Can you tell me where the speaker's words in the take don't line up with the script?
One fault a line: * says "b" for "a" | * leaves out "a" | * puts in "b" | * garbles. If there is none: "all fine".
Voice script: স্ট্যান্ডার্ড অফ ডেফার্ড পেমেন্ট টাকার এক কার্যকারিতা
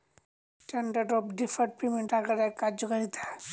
all fine